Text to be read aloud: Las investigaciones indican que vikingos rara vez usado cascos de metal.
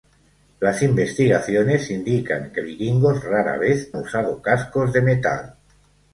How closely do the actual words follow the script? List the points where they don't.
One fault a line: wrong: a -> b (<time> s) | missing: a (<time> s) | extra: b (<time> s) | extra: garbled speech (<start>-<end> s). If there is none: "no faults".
no faults